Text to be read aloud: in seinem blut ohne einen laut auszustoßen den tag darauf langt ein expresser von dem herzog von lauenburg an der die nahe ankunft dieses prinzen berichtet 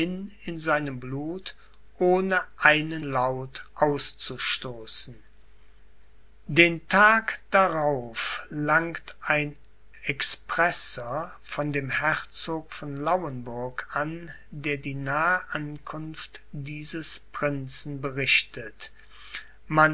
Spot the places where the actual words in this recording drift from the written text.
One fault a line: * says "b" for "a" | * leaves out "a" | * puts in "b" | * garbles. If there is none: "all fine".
all fine